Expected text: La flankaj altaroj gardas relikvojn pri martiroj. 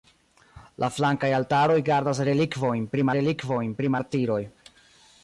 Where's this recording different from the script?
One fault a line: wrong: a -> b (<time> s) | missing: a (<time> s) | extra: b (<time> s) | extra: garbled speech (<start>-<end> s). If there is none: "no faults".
extra: relikvojn pri (3.2 s)